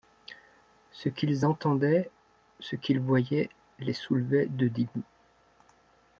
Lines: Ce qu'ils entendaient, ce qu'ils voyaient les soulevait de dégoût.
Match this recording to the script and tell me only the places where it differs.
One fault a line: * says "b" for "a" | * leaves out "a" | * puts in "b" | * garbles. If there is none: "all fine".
all fine